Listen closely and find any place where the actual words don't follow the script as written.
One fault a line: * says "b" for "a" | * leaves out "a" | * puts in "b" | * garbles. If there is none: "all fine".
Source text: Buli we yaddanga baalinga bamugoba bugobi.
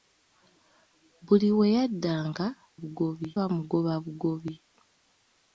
* says "bugobi" for "baalinga"